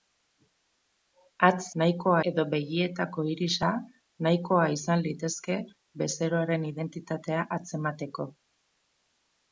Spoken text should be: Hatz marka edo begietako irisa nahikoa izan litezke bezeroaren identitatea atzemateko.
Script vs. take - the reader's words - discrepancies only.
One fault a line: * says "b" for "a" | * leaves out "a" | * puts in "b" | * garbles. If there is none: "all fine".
* says "nahikoa" for "marka"